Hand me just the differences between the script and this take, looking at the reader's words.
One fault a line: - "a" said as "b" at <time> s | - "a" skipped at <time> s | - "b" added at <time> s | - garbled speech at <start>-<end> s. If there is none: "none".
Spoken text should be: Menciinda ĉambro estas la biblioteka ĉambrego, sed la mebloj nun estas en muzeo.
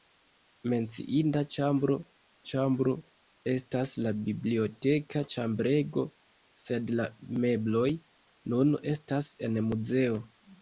- "ĉambro" added at 2.5 s